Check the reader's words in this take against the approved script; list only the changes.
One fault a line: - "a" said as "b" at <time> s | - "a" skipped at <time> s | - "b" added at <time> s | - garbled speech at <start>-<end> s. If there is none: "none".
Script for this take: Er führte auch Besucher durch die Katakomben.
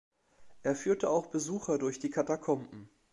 none